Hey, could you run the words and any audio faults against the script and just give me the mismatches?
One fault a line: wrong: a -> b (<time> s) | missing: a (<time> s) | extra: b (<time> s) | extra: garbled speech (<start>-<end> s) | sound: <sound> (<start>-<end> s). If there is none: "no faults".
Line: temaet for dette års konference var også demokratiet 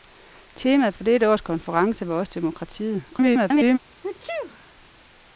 extra: garbled speech (3.1-3.8 s)
sound: sneeze (4.0-4.7 s)